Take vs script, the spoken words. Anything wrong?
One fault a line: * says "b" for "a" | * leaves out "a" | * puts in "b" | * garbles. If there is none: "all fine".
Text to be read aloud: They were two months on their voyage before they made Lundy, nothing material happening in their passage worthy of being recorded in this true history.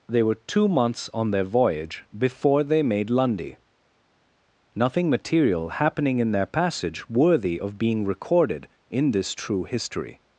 all fine